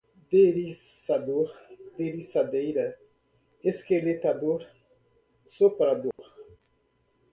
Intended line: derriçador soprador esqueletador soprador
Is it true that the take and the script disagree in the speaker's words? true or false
true